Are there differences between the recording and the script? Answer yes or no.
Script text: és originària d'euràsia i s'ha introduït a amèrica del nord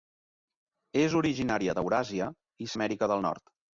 yes